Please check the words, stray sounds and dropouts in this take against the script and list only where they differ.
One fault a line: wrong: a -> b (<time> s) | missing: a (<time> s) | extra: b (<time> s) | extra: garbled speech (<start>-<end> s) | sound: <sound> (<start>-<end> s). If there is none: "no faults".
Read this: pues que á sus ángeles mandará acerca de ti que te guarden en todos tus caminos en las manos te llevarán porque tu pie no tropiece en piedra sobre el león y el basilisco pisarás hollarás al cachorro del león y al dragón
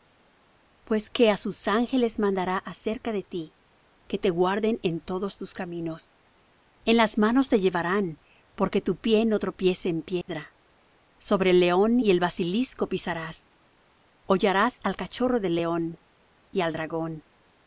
sound: dropout (10.2-10.3 s)